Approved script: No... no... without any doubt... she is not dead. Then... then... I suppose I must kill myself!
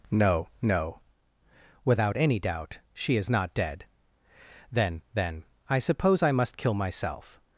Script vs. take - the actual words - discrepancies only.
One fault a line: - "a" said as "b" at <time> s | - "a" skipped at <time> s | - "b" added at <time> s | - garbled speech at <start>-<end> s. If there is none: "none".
none